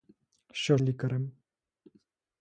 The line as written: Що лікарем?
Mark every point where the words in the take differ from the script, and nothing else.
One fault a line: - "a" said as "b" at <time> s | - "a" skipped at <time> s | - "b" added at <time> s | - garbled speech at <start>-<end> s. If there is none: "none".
none